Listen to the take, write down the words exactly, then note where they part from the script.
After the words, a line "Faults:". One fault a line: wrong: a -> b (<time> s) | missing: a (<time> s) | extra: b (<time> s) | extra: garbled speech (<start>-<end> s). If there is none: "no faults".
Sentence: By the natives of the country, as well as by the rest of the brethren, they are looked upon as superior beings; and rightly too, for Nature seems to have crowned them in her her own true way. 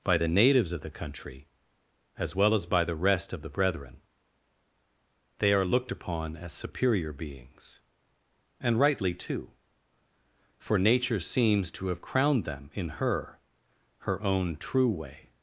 By the natives of the country, as well as by the rest of the brethren, they are looked upon as superior beings; and rightly too, for Nature seems to have crowned them in her her own true way.
Faults:
no faults